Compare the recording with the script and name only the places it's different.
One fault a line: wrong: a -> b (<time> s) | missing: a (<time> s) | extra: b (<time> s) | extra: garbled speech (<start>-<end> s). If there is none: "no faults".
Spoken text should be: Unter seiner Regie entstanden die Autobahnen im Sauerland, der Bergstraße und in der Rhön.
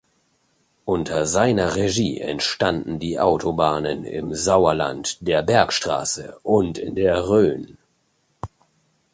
no faults